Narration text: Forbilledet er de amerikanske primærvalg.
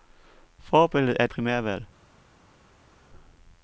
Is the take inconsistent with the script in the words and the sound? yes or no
yes